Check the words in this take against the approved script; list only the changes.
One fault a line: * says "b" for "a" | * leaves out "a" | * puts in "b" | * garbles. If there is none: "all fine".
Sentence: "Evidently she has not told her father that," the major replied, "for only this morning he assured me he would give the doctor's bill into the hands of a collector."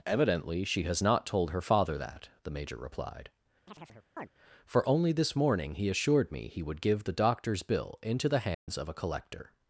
all fine